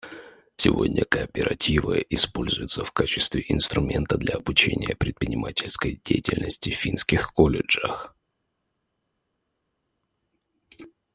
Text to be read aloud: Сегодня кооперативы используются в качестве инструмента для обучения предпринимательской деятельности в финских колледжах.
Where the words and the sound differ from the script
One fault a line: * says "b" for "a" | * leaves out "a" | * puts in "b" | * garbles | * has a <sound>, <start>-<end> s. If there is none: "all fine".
all fine